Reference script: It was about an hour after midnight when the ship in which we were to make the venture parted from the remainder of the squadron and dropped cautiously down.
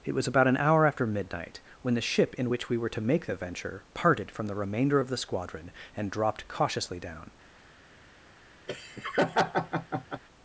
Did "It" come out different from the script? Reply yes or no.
no